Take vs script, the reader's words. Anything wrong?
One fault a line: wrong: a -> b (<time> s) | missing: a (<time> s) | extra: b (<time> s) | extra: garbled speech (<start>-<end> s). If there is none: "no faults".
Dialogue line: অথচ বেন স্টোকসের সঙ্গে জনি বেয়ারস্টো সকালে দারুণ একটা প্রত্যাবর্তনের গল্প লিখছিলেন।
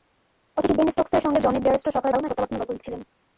missing: একটা (2.3 s)